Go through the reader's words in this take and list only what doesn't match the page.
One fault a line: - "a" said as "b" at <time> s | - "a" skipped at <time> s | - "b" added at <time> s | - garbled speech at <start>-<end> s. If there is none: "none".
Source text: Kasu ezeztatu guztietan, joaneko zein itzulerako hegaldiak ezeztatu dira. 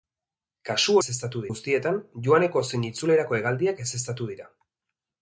none